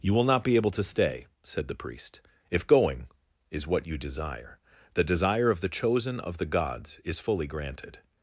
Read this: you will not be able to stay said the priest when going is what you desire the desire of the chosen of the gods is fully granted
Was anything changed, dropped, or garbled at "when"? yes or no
yes